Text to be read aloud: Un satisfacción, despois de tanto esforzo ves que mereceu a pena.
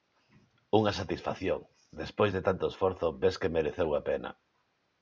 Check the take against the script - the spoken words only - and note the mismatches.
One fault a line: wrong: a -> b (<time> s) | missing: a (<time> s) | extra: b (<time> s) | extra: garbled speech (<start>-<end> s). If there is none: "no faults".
wrong: Un -> Unha (0.8 s)